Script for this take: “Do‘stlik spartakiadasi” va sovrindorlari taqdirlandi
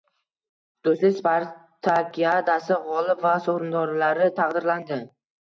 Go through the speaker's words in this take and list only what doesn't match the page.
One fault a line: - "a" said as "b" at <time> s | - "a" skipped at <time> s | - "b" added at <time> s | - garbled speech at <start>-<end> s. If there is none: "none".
- "g‘olib" added at 2.9 s